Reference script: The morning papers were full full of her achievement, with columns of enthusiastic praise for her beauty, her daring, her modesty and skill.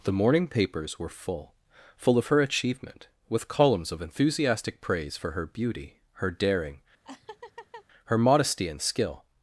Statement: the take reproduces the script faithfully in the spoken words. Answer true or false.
true